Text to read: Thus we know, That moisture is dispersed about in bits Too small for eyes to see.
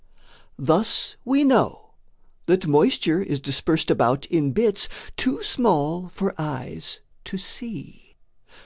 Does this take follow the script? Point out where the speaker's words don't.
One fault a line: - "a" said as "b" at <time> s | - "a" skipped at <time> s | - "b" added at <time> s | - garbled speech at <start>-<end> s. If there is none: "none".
none